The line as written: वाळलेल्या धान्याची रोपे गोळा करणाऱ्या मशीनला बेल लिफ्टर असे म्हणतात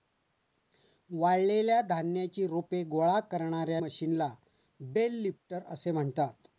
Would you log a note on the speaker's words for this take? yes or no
no